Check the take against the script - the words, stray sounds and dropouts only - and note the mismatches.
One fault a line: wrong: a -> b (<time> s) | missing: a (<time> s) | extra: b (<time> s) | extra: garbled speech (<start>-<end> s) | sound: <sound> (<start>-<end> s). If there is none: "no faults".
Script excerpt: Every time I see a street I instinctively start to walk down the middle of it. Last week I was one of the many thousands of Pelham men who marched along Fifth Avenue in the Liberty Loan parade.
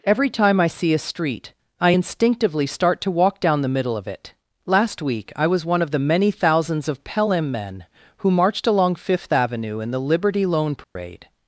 sound: dropout (10.8-11.0 s)